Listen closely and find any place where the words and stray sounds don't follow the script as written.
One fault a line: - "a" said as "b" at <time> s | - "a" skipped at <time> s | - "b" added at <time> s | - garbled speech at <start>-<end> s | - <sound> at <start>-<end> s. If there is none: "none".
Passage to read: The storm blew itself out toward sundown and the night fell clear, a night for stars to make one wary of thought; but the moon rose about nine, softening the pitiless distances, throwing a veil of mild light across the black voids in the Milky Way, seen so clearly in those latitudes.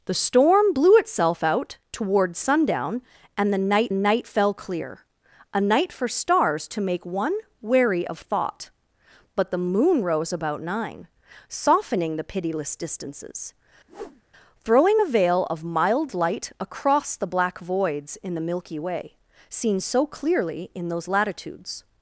- "night" added at 3.9 s
- whoosh at 13.9-14.2 s